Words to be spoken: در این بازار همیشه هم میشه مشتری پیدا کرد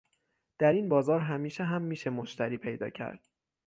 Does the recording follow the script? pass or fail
pass